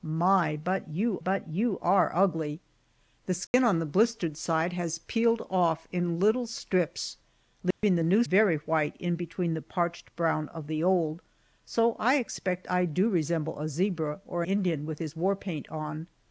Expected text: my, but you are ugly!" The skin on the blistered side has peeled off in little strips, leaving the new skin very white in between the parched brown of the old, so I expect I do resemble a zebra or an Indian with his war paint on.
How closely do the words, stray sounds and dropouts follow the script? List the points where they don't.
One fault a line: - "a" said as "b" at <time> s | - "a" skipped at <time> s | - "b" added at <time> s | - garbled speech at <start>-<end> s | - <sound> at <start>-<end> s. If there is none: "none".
- "but you" added at 1.2 s
- dropout at 3.5-3.5 s
- dropout at 7.7-7.8 s
- "skin" skipped at 8.2 s
- "an" skipped at 14.4 s